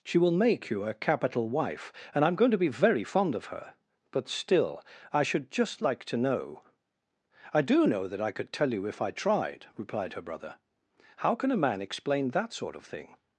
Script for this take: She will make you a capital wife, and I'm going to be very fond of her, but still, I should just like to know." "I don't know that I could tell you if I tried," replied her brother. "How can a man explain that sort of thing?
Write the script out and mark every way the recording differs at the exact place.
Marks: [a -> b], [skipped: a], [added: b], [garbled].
She will make you a capital wife, and I'm going to be very fond of her, but still, I should just like to know." "I [don't -> do] know that I could tell you if I tried," replied her brother. "How can a man explain that sort of thing?